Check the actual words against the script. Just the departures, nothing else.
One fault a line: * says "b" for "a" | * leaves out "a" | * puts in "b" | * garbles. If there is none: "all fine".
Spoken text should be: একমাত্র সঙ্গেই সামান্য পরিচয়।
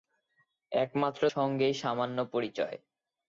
all fine